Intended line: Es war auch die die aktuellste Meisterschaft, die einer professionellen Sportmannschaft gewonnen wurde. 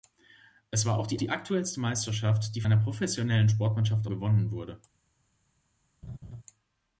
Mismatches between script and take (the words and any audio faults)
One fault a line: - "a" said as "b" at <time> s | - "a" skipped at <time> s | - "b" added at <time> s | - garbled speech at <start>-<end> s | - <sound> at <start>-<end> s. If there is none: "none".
- laugh at 6.0-6.4 s